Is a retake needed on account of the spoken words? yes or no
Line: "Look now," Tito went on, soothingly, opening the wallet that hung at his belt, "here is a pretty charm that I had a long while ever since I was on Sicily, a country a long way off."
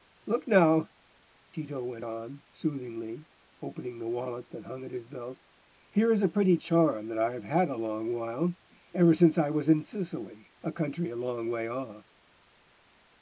yes